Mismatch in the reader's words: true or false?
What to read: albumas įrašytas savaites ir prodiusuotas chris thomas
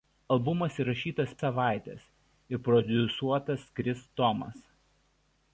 false